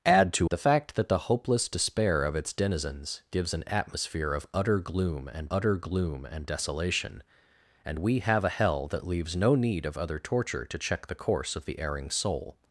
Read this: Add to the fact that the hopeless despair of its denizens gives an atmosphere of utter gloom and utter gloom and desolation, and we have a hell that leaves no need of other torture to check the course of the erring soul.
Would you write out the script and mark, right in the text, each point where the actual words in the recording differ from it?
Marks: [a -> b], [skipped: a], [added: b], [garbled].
Add to the fact that the hopeless despair of its denizens gives an atmosphere of utter gloom and utter gloom and desolation, and we have a hell that leaves no need of other torture to check the course of the erring soul.